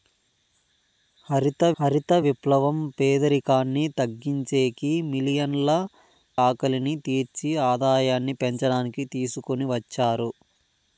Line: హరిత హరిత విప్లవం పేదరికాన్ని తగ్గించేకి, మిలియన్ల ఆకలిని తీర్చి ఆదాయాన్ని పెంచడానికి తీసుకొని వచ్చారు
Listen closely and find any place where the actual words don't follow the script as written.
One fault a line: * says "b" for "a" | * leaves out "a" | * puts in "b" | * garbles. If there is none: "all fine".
all fine